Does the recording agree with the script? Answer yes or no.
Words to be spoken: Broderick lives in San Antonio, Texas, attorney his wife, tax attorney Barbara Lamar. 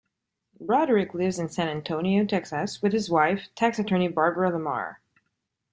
no